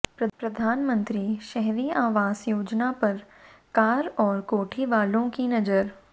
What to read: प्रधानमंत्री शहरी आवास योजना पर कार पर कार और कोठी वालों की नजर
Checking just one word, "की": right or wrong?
right